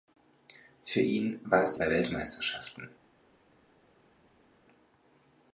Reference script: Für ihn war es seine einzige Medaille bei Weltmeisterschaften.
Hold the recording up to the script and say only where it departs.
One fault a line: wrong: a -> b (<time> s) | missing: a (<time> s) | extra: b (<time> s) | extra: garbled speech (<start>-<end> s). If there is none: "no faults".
missing: seine einzige Medaille (1.8 s)